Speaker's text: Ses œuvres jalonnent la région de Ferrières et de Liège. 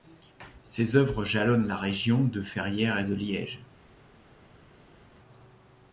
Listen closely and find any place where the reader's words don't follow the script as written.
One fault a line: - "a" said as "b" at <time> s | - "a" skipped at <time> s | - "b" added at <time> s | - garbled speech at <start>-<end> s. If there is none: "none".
none